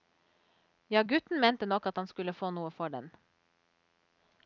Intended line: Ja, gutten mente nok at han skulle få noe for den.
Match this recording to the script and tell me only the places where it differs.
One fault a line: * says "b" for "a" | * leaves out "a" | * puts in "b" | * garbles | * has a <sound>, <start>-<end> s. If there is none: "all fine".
all fine